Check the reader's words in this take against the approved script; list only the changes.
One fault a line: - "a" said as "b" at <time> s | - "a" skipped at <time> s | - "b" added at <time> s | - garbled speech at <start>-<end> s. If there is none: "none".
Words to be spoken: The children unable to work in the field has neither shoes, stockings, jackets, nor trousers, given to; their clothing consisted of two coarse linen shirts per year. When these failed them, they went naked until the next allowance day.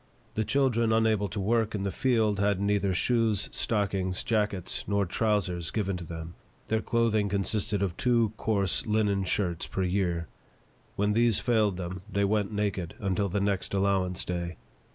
- "has" said as "had" at 2.4 s
- "them" added at 6.1 s